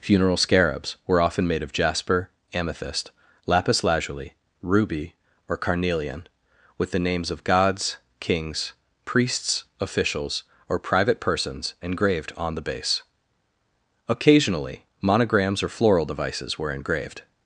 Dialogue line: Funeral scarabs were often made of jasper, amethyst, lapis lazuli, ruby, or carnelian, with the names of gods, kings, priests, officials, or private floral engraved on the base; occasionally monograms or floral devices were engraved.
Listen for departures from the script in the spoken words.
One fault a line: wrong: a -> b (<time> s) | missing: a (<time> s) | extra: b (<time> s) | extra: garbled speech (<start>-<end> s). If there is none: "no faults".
wrong: floral -> persons (11.2 s)